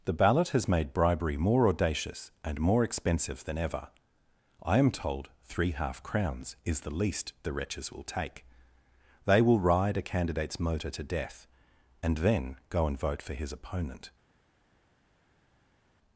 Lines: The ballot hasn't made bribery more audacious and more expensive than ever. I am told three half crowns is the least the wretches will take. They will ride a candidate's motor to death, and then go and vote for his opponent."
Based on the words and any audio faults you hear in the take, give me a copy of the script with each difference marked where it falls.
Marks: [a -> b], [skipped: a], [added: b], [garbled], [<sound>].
The ballot [hasn't -> has] made bribery more audacious and more expensive than ever. I am told three half crowns is the least the wretches will take. They will ride a candidate's motor to death, and then go and vote for his opponent."